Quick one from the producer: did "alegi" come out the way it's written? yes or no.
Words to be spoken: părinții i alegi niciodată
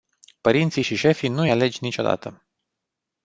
yes